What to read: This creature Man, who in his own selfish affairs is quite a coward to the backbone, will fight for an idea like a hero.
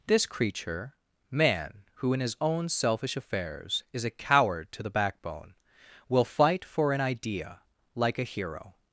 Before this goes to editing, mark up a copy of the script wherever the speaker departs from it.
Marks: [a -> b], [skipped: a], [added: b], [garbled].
This creature Man, who in his own selfish affairs is [skipped: quite] a coward to the backbone, will fight for an idea like a hero.